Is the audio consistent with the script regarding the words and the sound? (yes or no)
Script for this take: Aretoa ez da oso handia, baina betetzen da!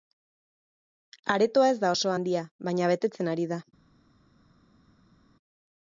no